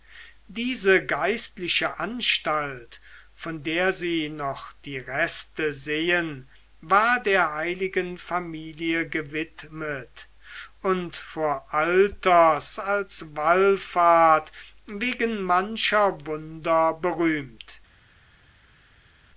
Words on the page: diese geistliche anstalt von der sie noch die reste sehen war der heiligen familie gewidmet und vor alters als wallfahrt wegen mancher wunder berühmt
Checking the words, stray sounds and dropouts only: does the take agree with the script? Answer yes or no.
yes